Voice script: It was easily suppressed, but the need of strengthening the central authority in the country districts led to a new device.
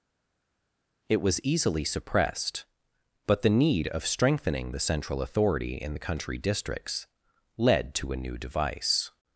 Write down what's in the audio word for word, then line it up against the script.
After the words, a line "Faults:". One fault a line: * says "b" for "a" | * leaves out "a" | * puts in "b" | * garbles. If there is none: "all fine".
It was easily suppressed, but the need of strengthening the central authority in the country districts led to a new device.
Faults:
all fine